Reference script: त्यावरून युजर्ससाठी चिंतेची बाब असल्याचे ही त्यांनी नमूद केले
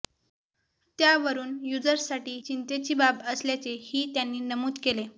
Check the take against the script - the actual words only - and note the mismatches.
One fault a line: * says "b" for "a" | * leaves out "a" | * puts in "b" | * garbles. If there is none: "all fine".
all fine